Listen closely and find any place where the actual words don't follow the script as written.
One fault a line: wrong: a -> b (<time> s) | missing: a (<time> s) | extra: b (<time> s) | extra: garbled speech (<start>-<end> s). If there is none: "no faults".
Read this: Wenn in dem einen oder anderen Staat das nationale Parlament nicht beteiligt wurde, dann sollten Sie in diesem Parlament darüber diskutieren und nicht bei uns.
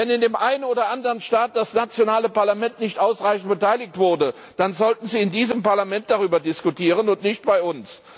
extra: ausreichend (3.0 s)